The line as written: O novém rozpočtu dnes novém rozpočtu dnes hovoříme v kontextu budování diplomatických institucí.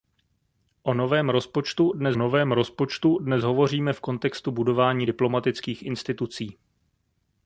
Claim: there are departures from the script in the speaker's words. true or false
false